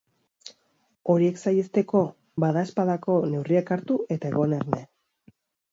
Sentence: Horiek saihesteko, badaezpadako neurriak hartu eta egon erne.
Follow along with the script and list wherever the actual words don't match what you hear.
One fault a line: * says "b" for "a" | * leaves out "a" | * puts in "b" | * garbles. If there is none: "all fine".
all fine